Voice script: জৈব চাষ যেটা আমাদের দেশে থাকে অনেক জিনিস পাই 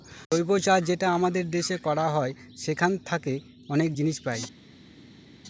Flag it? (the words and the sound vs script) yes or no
yes